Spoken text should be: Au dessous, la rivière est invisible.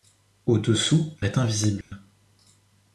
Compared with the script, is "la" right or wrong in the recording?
wrong